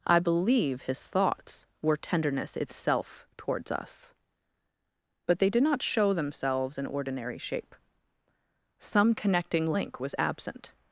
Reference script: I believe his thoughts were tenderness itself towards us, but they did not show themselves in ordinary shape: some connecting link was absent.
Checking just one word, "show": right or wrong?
right